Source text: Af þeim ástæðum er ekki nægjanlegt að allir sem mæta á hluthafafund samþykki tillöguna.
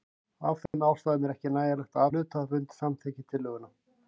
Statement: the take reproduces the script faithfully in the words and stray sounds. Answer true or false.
false